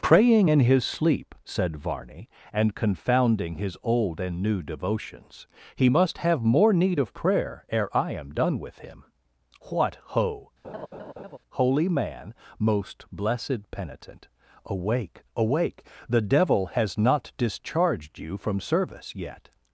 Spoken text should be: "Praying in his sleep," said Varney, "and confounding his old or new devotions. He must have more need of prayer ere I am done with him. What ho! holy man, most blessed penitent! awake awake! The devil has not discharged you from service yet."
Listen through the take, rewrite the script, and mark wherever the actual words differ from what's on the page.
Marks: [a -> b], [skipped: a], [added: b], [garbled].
"Praying in his sleep," said Varney, "and confounding his old [or -> and] new devotions. He must have more need of prayer ere I am done with him. What ho! holy man, most blessed penitent! awake awake! The devil has not discharged you from service yet."